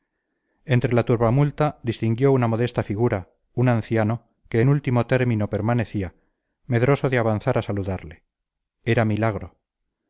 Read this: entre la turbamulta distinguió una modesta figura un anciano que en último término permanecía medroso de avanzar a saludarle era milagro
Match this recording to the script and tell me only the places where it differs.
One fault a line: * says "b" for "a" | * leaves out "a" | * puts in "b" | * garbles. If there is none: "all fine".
all fine